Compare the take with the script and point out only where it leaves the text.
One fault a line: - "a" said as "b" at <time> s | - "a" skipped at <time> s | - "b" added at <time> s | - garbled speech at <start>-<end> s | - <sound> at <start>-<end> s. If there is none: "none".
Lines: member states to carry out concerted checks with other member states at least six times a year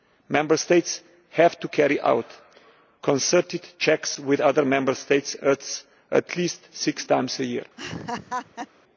- "have" added at 1.3 s
- laugh at 7.8-8.7 s